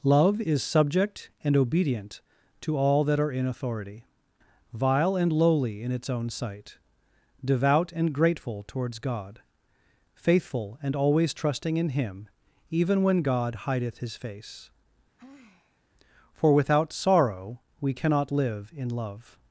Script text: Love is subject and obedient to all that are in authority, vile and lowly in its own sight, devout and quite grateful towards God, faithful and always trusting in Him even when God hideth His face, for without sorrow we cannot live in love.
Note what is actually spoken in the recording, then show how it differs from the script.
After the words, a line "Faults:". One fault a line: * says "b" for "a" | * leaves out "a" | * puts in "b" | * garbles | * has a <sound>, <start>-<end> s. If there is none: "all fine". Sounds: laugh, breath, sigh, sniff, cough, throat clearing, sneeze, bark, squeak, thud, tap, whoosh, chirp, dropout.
Love is subject and obedient to all that are in authority, vile and lowly in its own sight, devout and grateful towards God, faithful and always trusting in Him even when God hideth His face, for without sorrow we cannot live in love.
Faults:
* leaves out "quite"
* has a sigh, 15.2-15.8 s